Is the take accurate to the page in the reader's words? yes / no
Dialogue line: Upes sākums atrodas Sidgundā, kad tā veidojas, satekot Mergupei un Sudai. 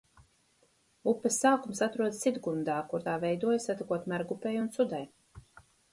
no